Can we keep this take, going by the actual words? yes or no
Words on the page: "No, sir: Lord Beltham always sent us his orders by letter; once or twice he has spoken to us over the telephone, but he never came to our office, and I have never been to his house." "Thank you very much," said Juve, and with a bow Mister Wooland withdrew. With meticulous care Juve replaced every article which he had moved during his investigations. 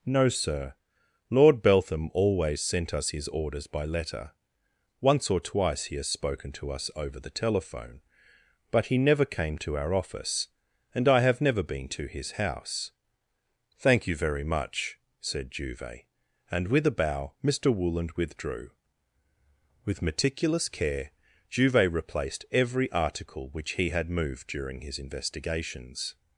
yes